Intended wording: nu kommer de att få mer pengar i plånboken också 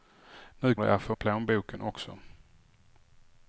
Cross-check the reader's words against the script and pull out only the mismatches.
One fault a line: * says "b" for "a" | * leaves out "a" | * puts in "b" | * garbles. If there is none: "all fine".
* leaves out "kommer"
* leaves out "mer pengar"